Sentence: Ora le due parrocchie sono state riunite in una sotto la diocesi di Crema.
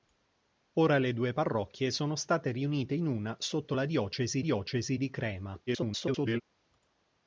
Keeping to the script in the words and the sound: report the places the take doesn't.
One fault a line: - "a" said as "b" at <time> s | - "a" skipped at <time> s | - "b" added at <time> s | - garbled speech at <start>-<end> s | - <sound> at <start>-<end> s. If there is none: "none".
- "diocesi" added at 4.4 s
- garbled speech at 5.7-6.4 s